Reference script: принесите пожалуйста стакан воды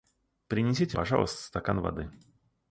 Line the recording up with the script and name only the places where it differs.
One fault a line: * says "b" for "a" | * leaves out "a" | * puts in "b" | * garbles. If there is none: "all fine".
all fine